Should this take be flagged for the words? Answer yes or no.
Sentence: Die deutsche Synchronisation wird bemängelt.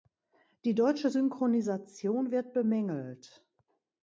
no